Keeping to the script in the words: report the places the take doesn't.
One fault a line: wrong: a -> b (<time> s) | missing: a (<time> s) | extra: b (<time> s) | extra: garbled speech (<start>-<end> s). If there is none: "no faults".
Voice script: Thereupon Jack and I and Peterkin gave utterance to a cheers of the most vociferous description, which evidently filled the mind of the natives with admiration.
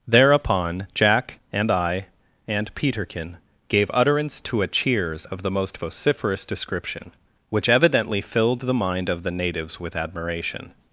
no faults